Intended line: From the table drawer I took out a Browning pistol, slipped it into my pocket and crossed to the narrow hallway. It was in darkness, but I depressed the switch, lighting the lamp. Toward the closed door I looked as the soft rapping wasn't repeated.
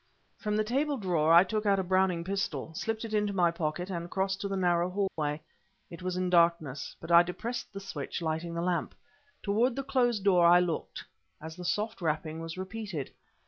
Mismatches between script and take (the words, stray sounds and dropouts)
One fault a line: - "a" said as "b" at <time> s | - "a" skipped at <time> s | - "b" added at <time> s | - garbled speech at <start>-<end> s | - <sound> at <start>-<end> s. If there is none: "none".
- dropout at 5.1-5.2 s
- "wasn't" said as "was" at 12.4 s